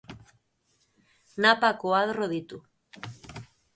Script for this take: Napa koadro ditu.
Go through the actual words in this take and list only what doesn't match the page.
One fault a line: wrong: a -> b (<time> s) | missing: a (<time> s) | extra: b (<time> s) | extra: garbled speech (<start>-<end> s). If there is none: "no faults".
no faults